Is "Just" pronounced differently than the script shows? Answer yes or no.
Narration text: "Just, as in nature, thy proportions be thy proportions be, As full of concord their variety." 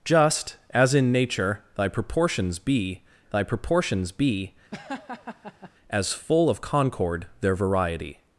no